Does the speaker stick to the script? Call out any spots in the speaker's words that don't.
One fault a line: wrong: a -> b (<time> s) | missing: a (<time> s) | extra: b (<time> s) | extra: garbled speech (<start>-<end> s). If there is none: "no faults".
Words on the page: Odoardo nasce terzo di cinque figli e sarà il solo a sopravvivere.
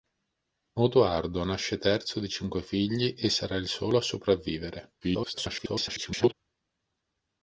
extra: garbled speech (5.0-6.3 s)